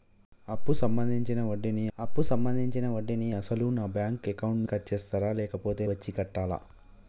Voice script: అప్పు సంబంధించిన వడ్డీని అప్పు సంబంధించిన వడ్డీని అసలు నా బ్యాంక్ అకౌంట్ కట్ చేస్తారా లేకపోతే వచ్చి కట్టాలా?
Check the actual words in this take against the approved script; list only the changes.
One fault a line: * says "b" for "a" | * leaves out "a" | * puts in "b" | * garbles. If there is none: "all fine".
all fine